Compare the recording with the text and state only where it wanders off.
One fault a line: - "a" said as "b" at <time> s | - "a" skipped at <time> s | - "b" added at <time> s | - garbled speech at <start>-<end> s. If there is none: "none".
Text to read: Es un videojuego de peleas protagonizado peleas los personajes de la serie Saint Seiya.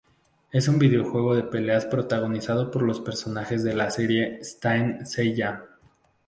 - "peleas" said as "por" at 2.7 s